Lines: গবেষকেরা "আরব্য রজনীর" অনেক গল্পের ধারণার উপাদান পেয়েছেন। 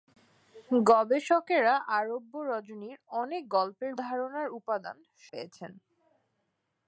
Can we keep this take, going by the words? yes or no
yes